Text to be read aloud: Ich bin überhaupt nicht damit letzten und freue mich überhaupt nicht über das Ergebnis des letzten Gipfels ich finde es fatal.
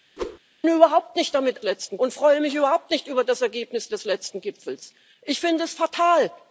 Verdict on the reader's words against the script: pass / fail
pass